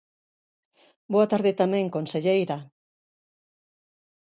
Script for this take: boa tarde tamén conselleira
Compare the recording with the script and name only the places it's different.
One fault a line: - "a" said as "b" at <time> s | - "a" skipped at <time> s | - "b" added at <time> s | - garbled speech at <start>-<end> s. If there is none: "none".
none